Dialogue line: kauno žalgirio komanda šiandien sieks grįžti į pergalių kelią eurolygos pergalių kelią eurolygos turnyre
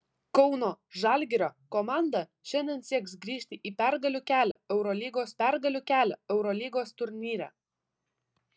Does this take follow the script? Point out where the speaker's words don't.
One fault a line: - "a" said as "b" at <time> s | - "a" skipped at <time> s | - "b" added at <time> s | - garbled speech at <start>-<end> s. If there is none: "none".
none